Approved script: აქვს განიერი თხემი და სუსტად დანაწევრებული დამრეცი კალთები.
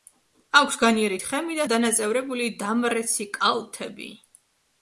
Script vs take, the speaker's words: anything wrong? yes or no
yes